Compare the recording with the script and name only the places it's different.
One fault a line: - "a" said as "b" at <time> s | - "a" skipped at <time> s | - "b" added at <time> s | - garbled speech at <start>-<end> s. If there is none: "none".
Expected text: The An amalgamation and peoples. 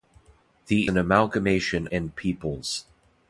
none